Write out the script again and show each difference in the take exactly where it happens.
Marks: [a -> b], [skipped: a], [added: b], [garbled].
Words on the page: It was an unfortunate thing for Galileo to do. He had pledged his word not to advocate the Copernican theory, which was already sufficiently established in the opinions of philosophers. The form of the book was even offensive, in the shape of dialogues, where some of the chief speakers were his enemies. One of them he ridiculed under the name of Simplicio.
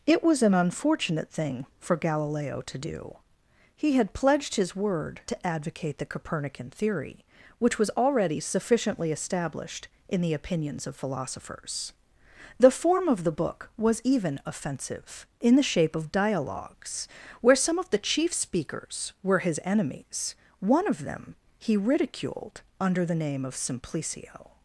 It was an unfortunate thing for Galileo to do. He had pledged his word [skipped: not] to advocate the Copernican theory, which was already sufficiently established in the opinions of philosophers. The form of the book was even offensive, in the shape of dialogues, where some of the chief speakers were his enemies. One of them he ridiculed under the name of Simplicio.